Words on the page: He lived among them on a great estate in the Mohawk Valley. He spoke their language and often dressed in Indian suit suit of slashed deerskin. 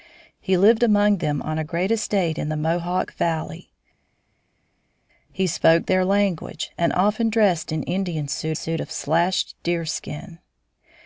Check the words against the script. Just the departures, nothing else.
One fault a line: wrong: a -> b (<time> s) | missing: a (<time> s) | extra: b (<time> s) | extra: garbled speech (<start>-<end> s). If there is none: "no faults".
no faults